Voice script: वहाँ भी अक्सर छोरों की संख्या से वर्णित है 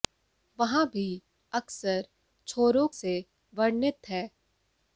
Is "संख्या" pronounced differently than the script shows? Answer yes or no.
yes